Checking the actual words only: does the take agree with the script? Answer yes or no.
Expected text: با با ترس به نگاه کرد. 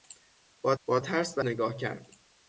yes